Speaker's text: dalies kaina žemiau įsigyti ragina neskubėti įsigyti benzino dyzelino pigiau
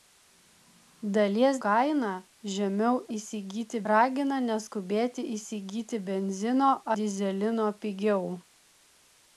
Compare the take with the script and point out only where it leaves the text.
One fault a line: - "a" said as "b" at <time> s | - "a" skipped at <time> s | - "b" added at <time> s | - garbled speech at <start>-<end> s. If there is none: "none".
none